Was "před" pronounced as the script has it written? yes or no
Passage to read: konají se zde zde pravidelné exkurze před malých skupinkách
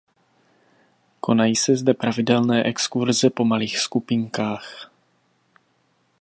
no